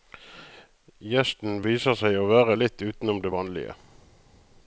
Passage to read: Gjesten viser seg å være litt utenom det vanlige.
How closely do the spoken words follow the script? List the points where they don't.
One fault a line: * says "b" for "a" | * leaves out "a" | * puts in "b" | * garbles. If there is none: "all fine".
all fine